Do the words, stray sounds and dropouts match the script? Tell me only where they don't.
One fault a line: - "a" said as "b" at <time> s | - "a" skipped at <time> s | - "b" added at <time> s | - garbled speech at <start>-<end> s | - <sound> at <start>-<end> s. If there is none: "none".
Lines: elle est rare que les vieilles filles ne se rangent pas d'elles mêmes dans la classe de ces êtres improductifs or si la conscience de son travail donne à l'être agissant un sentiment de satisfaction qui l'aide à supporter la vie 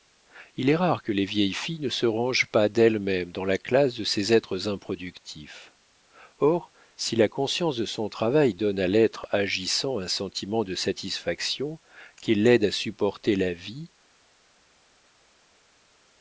- "elle" said as "il" at 0.6 s